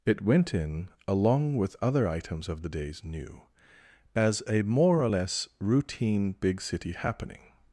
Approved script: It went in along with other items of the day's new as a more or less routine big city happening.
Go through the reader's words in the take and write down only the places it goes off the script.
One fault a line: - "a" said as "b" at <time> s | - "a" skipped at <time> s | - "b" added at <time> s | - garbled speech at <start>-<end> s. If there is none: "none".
none